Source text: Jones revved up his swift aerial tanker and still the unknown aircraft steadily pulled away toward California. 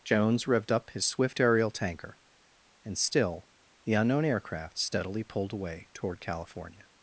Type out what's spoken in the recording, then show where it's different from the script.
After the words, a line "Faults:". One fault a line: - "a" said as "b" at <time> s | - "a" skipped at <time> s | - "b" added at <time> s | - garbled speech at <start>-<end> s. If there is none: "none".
Jones revved up his swift aerial tanker and still the unknown aircraft steadily pulled away toward California.
Faults:
none